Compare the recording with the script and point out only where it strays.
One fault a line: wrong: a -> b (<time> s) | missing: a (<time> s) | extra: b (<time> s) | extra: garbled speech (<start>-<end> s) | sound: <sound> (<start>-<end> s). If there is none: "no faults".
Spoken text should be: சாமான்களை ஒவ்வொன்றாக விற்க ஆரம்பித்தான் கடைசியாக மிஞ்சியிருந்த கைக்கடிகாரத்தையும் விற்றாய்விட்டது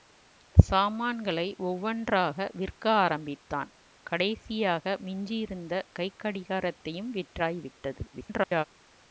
extra: garbled speech (8.1-8.6 s)